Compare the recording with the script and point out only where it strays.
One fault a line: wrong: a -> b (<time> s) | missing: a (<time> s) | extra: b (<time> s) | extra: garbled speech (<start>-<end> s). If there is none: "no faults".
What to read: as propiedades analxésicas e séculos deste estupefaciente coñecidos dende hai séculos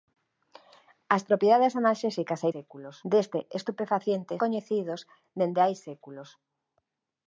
no faults